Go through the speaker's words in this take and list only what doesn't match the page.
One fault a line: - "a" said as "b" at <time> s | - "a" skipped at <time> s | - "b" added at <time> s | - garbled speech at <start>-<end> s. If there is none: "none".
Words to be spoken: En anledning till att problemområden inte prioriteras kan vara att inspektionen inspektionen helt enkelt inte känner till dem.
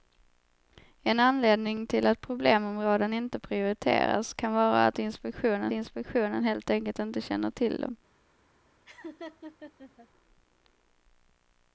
none